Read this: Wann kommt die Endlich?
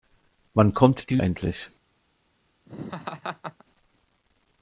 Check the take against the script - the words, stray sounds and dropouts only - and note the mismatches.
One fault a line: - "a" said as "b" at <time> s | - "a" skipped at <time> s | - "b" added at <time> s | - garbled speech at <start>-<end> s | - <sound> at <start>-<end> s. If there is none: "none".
- laugh at 2.7-3.6 s